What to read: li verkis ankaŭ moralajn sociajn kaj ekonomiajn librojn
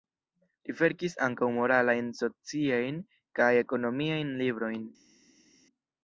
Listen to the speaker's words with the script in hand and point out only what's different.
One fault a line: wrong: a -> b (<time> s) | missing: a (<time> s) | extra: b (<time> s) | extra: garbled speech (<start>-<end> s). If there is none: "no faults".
no faults